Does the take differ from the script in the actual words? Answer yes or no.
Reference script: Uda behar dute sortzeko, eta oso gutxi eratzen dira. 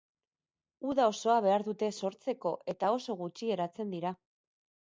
yes